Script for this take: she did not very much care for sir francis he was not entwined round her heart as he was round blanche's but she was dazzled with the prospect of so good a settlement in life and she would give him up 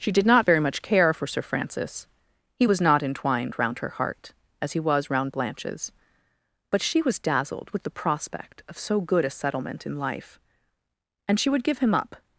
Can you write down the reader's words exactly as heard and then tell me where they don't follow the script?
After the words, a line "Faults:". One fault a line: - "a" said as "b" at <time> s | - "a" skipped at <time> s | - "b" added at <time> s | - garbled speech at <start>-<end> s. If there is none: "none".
she did not very much care for sir francis he was not entwined round her heart as he was round blanche's but she was dazzled with the prospect of so good a settlement in life and she would give him up
Faults:
none